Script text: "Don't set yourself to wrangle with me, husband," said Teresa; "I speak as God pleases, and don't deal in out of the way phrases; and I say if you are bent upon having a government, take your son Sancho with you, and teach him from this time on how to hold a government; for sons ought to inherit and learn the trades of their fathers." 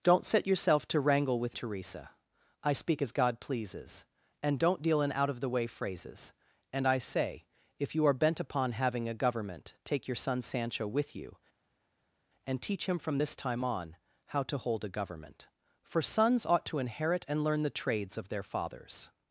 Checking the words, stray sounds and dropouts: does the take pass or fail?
fail